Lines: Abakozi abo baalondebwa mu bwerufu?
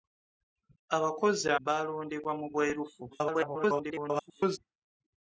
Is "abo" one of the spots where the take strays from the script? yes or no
yes